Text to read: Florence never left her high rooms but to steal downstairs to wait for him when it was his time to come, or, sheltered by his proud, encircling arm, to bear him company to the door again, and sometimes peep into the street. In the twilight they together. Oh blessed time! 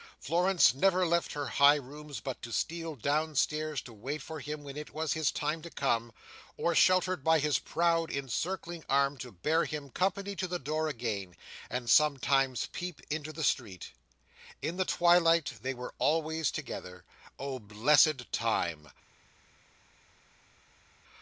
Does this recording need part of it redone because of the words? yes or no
yes